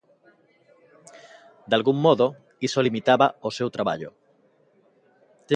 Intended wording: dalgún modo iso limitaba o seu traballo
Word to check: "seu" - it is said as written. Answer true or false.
true